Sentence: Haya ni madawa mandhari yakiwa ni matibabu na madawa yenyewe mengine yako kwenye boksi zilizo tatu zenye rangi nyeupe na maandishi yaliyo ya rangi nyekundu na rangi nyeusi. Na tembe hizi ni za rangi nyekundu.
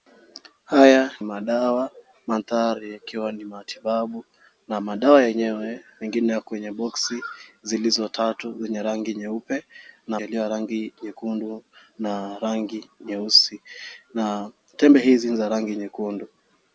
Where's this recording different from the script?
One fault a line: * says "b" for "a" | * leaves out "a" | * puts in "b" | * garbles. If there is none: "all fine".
* leaves out "ni"
* leaves out "maandishi"